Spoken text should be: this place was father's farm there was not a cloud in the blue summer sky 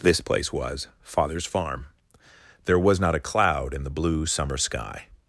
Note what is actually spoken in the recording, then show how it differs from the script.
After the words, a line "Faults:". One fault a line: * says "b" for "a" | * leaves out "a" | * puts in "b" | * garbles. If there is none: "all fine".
this place was father's farm there was not a cloud in the blue summer sky
Faults:
all fine